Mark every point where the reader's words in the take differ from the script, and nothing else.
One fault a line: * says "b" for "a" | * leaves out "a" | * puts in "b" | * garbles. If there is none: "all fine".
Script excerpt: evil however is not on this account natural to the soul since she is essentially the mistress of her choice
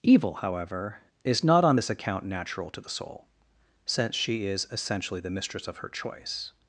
all fine